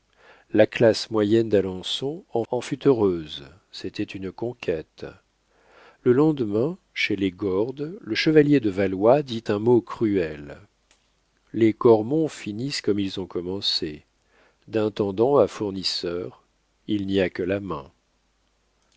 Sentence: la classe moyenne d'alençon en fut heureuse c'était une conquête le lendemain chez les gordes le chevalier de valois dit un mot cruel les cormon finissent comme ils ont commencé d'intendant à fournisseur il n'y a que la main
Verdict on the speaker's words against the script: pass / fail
fail